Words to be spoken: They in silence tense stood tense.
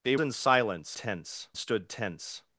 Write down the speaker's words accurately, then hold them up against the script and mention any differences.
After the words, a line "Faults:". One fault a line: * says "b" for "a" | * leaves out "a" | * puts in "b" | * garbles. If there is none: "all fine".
They in silence tense stood tense.
Faults:
all fine